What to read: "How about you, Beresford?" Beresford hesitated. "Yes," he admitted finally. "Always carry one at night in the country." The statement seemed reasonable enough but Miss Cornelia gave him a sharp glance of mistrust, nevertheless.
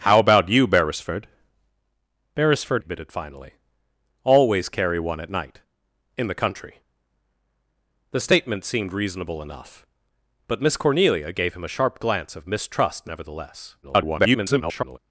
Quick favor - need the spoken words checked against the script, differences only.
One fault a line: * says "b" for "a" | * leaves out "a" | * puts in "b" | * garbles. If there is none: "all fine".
* leaves out "hesitated Yes he"
* garbles